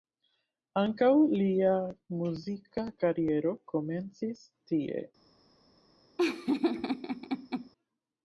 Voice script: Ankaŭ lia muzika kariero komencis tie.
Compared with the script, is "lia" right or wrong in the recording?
right